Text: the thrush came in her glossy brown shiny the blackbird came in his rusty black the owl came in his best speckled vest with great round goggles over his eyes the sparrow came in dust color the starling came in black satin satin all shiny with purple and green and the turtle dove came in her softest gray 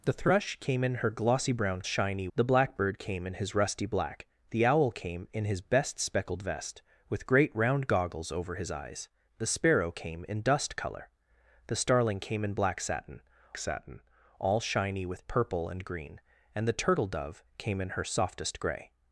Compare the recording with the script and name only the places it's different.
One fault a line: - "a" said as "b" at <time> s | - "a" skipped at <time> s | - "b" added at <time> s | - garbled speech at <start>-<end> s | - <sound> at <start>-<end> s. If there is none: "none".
none